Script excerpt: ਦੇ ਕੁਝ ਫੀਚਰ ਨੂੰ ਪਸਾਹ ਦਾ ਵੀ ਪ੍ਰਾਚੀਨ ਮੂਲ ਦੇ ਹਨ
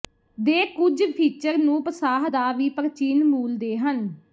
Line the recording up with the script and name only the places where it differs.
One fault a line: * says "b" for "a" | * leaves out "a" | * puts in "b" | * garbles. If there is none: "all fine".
all fine